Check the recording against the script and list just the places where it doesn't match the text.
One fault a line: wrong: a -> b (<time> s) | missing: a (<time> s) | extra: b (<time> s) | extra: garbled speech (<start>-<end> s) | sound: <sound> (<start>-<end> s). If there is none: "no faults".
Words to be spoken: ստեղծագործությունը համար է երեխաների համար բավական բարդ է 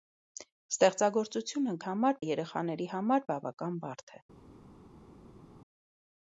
no faults